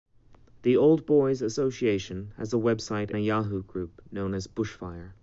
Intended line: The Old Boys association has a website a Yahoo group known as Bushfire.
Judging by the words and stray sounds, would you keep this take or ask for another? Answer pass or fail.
pass